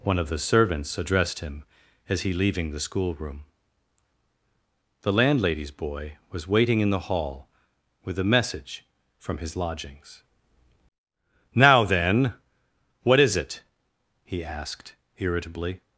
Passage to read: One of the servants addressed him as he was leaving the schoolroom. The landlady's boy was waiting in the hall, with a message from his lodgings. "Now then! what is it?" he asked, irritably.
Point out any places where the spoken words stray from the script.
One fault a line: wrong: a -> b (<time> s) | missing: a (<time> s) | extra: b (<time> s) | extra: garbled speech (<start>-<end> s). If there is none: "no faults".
missing: was (2.3 s)